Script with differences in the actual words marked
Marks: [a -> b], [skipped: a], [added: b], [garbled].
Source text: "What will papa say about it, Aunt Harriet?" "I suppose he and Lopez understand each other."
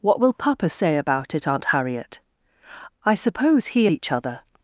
"What will papa say about it, Aunt Harriet?" "I suppose he [skipped: and Lopez understand] each other."